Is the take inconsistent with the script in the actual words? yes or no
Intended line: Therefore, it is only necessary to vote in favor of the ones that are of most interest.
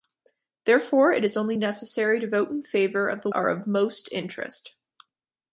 yes